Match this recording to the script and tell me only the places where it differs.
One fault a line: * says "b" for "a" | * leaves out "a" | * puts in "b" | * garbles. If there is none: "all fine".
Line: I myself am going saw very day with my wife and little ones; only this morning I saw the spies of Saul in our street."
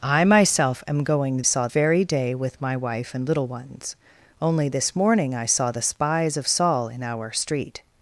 all fine